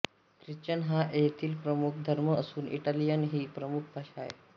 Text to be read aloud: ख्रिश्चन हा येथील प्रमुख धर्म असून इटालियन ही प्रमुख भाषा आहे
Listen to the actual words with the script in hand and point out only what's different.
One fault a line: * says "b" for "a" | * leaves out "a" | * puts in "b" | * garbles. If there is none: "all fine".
all fine